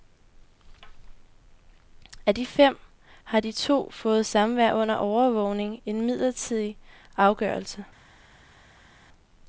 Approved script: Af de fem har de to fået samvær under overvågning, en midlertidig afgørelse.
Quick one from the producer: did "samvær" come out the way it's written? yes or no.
yes